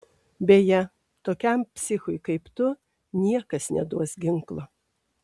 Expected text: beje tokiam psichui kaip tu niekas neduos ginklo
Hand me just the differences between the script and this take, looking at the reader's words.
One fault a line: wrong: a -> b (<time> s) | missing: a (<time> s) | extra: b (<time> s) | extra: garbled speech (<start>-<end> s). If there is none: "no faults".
no faults